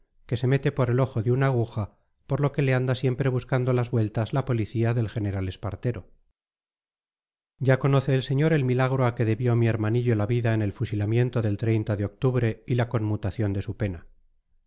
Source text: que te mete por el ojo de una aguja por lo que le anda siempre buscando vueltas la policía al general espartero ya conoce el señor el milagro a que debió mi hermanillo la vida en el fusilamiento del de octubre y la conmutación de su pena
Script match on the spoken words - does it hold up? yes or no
no